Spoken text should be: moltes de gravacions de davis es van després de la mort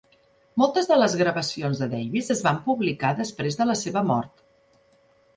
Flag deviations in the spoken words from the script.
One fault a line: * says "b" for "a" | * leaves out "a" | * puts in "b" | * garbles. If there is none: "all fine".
* puts in "les"
* puts in "publicar"
* puts in "seva"